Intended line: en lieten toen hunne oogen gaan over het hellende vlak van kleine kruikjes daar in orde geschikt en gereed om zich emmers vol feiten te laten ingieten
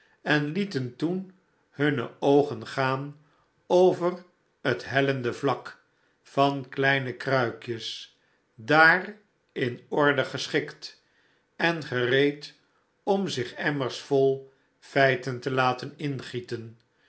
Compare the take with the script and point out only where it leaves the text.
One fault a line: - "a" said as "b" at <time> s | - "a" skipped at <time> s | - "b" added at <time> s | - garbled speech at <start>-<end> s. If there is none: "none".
none